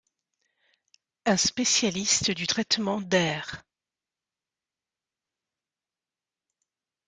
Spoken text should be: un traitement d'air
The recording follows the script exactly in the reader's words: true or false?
false